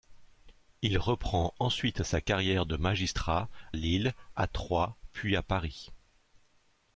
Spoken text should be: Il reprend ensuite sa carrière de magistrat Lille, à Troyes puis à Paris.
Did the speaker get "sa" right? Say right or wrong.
right